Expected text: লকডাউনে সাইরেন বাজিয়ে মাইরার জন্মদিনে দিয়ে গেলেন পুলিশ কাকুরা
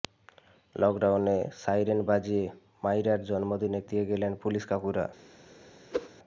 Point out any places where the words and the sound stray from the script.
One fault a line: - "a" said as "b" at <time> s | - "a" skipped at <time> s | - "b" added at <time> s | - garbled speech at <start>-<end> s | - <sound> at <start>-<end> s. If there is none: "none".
- whoosh at 5.9-6.1 s